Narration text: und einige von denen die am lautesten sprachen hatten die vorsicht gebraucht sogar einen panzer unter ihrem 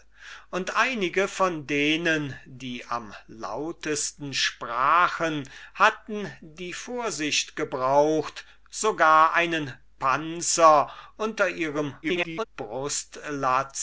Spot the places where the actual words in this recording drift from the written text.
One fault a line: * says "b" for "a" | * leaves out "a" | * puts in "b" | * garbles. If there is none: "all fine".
* garbles